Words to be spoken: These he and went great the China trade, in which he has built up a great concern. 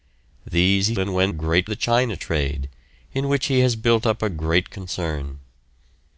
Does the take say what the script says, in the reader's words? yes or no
yes